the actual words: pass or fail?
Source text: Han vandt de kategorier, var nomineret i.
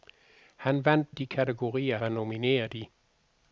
pass